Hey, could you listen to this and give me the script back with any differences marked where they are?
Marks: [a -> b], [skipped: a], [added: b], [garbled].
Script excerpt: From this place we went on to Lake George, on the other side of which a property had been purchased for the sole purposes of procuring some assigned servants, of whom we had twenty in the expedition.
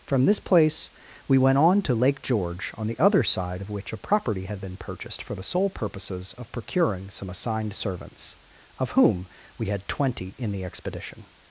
From this place we went on to Lake George, on the other side of which a property had been purchased for the sole purposes of procuring some assigned servants, of whom we had twenty in the expedition.